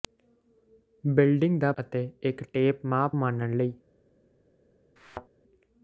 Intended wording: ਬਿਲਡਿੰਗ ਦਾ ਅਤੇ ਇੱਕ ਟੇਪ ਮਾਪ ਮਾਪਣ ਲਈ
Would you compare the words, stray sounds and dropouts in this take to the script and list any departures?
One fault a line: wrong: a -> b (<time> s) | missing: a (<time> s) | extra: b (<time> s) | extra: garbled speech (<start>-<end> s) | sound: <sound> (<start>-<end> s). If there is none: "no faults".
sound: thud (5.0-5.3 s)